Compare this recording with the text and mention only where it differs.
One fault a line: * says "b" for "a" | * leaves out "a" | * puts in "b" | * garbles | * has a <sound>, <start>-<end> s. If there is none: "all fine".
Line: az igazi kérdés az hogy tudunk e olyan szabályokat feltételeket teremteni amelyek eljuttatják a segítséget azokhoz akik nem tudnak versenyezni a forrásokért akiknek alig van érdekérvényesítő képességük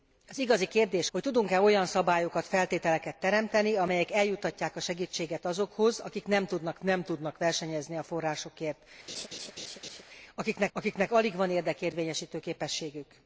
* leaves out "az"
* puts in "nem tudnak"
* has a laugh, 9.1-10.0 s
* puts in "akiknek"